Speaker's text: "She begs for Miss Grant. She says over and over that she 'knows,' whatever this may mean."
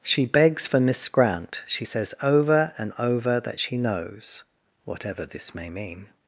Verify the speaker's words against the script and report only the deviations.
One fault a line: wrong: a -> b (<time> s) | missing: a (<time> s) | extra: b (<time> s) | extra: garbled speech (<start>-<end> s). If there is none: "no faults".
no faults